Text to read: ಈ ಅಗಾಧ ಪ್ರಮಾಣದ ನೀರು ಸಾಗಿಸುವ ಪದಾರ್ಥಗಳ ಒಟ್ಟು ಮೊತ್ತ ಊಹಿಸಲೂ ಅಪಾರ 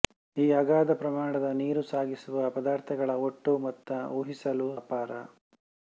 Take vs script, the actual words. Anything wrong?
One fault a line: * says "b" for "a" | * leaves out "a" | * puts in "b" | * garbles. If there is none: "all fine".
all fine